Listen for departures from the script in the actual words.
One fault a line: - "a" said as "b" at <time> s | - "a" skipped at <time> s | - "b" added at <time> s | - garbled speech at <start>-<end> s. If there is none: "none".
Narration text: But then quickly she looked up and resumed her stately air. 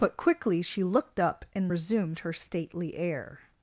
- "then" skipped at 0.2 s